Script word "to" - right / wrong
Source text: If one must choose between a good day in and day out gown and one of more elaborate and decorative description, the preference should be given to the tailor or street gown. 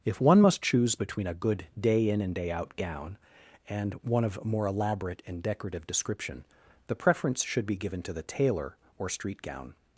right